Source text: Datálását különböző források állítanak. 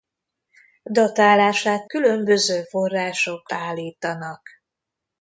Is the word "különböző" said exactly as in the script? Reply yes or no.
yes